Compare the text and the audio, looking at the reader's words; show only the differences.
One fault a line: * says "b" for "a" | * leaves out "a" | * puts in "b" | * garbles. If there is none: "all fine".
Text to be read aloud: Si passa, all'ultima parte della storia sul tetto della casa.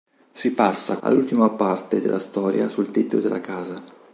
all fine